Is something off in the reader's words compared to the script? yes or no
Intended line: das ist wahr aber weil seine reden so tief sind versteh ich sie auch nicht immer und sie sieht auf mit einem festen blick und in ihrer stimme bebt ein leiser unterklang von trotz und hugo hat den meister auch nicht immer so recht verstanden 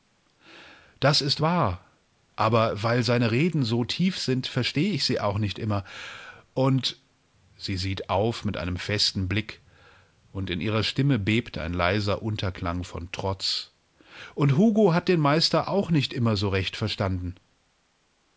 no